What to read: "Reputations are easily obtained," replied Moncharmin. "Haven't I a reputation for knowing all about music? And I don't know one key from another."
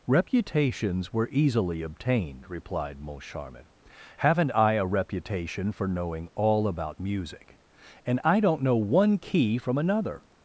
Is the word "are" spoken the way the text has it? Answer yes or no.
no